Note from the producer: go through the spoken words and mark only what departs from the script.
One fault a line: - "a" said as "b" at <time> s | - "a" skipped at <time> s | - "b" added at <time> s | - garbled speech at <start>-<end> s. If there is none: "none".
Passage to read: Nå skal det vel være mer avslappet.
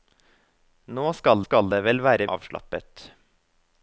- "skal" added at 1.4 s
- "mer" skipped at 2.3 s